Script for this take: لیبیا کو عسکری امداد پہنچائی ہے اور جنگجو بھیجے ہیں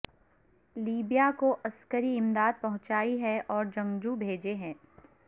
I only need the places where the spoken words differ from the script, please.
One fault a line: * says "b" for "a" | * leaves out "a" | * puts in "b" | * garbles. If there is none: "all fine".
all fine